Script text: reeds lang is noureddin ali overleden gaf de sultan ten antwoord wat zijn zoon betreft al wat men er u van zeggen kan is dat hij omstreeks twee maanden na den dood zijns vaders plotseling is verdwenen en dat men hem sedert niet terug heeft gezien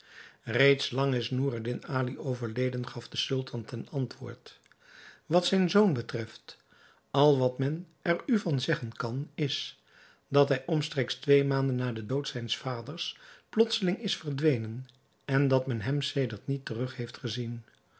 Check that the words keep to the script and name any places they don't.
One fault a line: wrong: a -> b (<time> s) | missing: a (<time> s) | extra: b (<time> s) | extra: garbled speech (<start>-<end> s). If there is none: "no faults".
no faults